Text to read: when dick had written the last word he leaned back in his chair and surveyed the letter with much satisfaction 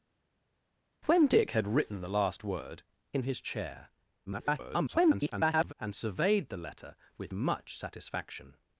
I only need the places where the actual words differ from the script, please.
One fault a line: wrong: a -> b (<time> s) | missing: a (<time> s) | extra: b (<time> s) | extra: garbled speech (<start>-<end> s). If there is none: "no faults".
missing: he leaned back (2.8 s)
extra: garbled speech (4.3-5.7 s)